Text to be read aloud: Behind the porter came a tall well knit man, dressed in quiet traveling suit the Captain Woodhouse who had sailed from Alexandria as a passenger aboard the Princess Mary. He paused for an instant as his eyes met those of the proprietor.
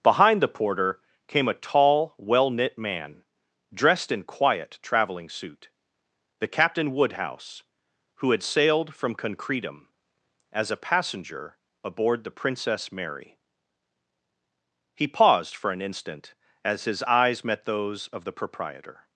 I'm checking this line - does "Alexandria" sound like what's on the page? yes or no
no